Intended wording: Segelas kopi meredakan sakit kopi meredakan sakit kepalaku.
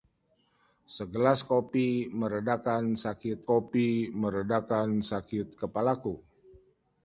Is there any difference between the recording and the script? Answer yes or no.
no